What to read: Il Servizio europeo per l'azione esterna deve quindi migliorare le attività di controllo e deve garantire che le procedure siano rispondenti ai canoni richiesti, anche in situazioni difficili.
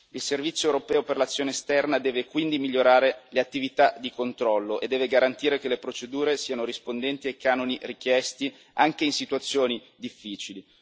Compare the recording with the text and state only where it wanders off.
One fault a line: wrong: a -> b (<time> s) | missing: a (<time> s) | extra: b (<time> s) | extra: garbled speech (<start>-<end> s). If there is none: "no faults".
no faults